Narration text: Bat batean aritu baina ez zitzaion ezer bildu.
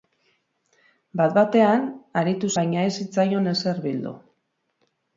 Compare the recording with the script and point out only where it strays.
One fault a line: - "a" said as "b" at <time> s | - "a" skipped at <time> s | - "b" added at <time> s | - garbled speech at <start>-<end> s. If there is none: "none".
none